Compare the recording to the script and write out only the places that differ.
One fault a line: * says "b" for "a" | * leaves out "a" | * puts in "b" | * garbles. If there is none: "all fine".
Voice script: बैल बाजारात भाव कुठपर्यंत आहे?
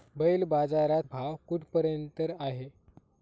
all fine